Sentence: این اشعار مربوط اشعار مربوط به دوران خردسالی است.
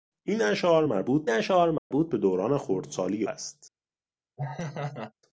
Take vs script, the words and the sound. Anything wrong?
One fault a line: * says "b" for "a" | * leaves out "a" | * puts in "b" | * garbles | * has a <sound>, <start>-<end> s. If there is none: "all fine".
* has a dropout, 1.8-1.9 s
* has a laugh, 4.4-5.1 s